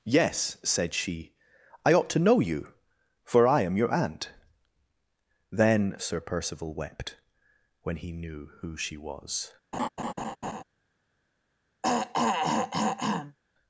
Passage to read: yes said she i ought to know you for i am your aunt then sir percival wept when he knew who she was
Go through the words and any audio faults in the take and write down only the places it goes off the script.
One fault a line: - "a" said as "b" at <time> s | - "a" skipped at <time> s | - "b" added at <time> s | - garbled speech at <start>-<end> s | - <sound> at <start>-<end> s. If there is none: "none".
- laugh at 9.7-10.6 s
- throat clearing at 11.8-13.4 s